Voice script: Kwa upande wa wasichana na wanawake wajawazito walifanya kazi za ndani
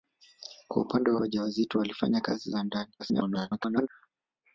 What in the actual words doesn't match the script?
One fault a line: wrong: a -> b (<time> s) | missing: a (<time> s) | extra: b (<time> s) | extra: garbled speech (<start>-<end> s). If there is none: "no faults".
missing: wasichana na wanawake (1.2 s)
extra: garbled speech (3.0-3.9 s)